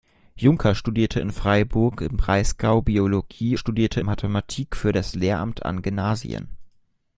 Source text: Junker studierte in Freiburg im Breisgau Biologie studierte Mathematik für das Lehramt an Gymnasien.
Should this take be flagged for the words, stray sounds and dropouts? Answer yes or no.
no